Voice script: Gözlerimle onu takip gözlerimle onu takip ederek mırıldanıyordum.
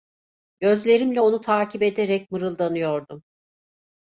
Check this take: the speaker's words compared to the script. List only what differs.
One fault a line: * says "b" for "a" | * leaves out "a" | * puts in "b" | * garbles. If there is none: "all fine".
* leaves out "gözlerimle onu takip"